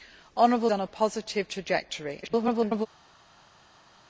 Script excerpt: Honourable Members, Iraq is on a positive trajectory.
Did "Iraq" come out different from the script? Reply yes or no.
yes